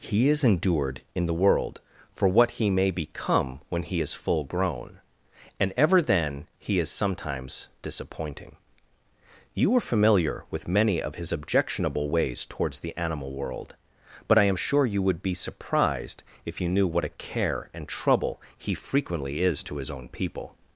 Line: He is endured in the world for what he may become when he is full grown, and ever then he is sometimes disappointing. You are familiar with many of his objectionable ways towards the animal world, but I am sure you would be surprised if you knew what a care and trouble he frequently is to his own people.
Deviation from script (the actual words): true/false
false